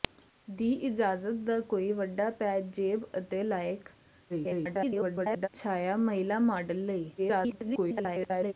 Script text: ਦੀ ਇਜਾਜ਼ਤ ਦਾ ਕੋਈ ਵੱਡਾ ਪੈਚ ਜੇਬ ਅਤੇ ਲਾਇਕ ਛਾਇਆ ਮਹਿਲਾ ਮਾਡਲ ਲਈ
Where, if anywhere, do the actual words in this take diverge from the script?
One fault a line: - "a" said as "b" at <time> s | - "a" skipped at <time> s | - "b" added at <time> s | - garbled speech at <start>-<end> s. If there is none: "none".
- garbled speech at 4.3-5.5 s
- garbled speech at 7.2-8.5 s